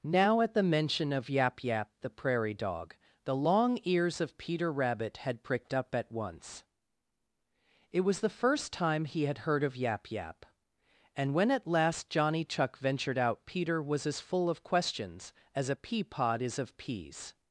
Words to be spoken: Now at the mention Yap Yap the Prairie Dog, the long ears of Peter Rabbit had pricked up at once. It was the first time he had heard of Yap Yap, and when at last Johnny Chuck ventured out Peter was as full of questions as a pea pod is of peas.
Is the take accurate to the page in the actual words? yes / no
no